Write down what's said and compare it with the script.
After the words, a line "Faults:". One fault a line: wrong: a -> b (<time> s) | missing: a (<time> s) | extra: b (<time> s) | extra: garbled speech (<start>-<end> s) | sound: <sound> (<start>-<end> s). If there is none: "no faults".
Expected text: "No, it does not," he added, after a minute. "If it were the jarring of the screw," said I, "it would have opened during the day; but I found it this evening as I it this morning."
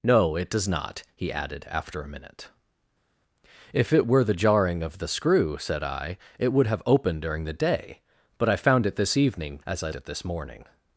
"No, it does not," he added, after a minute. "If it were the jarring of the screw," said I, "it would have opened during the day; but I found it this evening as I it this morning."
Faults:
no faults